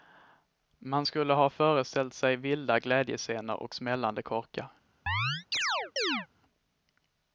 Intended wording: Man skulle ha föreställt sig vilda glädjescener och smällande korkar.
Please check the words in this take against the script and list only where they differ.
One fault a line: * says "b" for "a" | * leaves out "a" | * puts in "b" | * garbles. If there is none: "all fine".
all fine